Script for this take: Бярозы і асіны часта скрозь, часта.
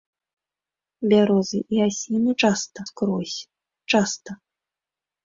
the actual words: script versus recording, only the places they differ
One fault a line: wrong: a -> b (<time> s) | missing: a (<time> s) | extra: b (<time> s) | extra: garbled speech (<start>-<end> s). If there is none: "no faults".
no faults